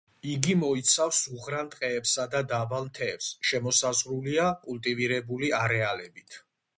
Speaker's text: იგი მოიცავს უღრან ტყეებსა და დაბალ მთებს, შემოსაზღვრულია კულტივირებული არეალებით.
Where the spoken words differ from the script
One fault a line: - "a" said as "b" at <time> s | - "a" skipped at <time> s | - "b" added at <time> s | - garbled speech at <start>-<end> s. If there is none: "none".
none